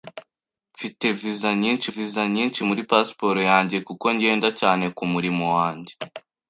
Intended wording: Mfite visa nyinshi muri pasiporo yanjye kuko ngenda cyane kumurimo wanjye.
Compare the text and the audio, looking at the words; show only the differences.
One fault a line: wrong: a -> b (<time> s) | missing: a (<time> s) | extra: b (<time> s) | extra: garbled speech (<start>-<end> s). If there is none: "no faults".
extra: visa nyinshi (1.9 s)